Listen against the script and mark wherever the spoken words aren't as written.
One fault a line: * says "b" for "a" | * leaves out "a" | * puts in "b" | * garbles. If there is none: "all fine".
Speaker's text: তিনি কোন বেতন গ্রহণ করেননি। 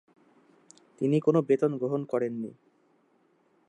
all fine